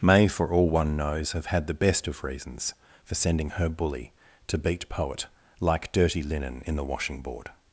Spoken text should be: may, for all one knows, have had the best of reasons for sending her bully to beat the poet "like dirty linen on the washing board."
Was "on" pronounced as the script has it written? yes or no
no